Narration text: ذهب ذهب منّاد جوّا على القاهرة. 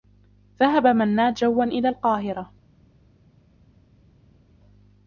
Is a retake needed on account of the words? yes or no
yes